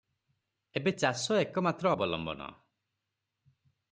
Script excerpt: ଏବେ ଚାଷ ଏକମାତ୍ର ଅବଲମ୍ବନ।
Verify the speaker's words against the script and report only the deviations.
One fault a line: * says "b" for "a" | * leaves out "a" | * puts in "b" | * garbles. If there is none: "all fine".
all fine